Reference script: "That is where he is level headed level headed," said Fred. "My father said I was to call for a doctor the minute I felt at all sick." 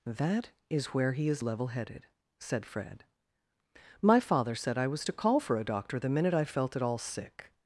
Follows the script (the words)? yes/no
no